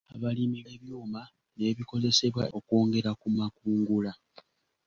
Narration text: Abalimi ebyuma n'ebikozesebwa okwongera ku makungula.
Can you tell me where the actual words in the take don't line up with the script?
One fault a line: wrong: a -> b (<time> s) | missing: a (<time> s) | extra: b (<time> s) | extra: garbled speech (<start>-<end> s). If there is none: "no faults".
no faults